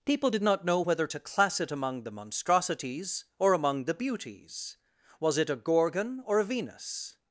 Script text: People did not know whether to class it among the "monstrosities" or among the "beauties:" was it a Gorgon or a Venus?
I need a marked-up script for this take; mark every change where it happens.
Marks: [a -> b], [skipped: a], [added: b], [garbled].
People did not know whether to class it among the "monstrosities" or among the "beauties:" was it a Gorgon or a Venus?